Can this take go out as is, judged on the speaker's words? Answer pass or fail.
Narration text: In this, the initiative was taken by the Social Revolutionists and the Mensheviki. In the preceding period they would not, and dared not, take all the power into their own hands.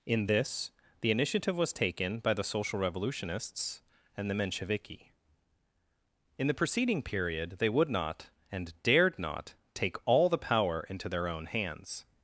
pass